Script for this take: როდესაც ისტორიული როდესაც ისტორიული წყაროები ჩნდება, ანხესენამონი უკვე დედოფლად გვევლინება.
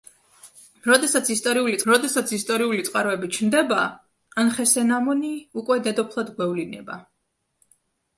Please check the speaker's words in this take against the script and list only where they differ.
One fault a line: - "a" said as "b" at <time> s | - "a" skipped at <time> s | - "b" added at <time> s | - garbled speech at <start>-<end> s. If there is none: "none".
none